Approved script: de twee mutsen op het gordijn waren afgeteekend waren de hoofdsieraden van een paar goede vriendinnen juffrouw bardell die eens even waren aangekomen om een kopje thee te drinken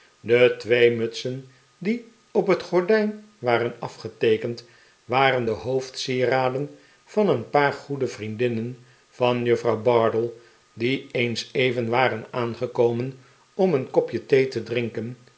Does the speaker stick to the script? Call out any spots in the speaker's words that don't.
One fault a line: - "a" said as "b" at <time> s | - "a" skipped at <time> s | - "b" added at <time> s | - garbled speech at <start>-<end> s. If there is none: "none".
- "die" added at 1.8 s
- "van" added at 9.1 s